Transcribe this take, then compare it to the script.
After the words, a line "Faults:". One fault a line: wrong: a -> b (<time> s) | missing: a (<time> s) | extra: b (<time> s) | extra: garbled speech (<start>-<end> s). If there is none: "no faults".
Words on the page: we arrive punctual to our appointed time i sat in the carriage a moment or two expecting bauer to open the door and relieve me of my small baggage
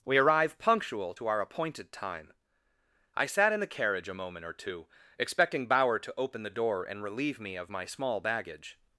we arrive punctual to our appointed time i sat in the carriage a moment or two expecting bauer to open the door and relieve me of my small baggage
Faults:
no faults